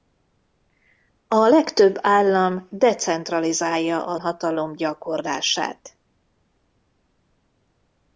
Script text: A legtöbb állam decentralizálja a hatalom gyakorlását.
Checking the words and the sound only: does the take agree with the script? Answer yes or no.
yes